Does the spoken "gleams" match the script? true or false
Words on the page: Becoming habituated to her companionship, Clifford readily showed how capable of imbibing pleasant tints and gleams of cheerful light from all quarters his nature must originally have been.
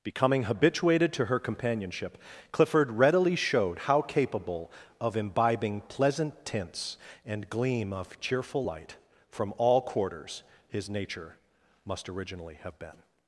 false